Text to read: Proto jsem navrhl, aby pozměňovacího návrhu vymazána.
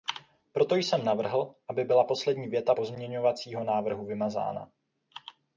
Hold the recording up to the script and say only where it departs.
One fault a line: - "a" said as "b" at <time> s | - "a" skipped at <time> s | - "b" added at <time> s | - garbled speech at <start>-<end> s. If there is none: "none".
- "byla poslední věta" added at 1.8 s